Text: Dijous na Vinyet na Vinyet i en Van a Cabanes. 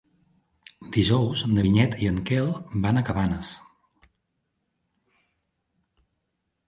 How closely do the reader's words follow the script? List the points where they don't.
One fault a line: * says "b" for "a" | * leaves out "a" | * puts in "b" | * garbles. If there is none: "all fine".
* leaves out "na Vinyet"
* puts in "Quel"